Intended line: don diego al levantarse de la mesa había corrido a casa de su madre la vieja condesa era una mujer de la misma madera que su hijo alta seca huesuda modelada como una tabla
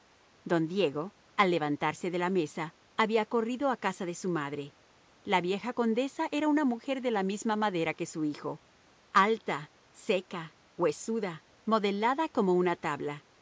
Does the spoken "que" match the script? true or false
true